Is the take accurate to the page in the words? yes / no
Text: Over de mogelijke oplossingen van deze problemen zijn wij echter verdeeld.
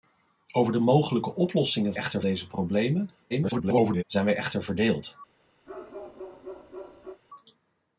no